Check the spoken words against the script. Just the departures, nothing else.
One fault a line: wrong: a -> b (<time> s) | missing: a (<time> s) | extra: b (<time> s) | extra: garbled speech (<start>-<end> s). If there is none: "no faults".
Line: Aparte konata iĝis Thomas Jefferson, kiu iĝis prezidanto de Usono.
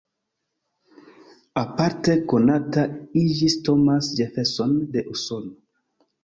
missing: kiu iĝis prezidanto (4.7 s)